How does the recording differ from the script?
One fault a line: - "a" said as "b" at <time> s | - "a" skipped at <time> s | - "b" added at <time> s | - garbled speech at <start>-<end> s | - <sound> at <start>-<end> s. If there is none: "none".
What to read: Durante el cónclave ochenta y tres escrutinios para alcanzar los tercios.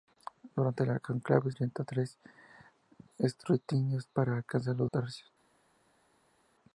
none